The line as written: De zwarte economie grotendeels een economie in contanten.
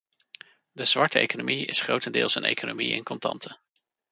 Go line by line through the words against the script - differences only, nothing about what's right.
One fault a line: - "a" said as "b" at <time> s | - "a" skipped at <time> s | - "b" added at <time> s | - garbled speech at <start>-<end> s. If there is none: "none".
- "is" added at 1.6 s